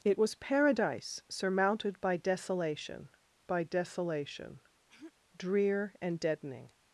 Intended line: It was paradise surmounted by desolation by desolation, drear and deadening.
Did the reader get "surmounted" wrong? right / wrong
right